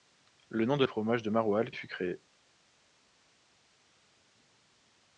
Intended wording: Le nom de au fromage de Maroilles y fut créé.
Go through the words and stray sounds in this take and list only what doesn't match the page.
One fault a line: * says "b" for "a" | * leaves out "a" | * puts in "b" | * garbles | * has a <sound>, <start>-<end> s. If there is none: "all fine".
all fine